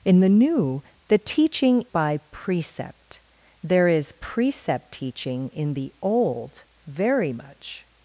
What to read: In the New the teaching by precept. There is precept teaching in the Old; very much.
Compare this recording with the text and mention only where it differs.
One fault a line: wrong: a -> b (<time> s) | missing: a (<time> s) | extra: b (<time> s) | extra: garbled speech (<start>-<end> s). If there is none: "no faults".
no faults